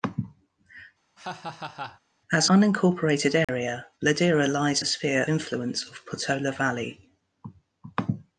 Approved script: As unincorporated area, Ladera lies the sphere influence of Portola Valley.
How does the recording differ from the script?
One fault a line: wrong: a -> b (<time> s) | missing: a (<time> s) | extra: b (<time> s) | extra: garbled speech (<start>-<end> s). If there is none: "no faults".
no faults